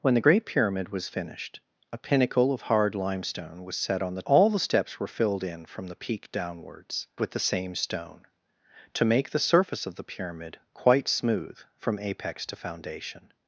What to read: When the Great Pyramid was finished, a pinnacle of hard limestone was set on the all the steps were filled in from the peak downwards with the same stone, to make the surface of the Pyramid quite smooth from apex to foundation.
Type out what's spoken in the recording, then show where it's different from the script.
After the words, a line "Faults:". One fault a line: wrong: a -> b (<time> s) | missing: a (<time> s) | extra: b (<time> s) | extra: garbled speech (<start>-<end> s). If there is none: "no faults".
When the Great Pyramid was finished, a pinnacle of hard limestone was set on the all the steps were filled in from the peak downwards with the same stone, to make the surface of the Pyramid quite smooth from apex to foundation.
Faults:
no faults